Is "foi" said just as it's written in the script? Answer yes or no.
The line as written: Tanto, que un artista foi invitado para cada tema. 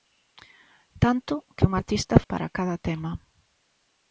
no